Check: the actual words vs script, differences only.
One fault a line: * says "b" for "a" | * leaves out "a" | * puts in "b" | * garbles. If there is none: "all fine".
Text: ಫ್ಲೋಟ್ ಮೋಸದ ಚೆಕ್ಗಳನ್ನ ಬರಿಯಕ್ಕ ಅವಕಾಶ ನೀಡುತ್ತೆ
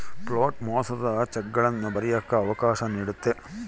all fine